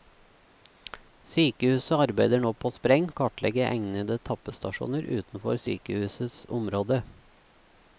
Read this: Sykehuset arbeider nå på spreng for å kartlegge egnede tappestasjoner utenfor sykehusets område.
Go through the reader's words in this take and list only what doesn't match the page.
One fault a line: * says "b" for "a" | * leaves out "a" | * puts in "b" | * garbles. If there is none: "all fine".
* leaves out "for"